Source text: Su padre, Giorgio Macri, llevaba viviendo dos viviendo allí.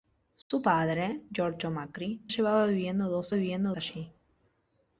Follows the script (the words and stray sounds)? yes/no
no